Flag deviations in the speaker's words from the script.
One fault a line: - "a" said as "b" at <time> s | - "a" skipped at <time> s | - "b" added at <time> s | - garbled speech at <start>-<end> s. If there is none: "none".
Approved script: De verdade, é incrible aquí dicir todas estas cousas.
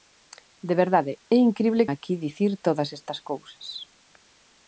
none